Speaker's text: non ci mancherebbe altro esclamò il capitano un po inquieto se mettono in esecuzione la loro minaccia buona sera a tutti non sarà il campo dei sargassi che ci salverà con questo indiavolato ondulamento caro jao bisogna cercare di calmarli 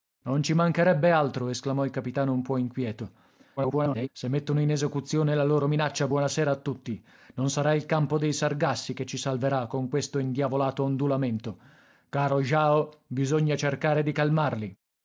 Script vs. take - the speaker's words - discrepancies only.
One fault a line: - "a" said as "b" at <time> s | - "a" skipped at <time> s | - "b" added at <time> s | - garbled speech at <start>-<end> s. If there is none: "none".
- garbled speech at 3.6-4.1 s